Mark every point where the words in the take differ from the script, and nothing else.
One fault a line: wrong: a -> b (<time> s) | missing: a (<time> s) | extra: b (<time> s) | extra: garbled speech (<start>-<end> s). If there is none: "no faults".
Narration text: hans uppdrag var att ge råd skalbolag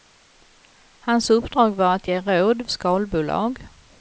no faults